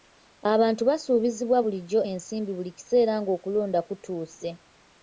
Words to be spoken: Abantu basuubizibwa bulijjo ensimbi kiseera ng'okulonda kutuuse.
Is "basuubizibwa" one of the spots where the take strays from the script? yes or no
no